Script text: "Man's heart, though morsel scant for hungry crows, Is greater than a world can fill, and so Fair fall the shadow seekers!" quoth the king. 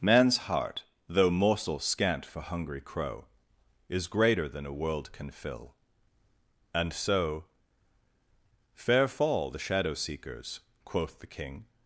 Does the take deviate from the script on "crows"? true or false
true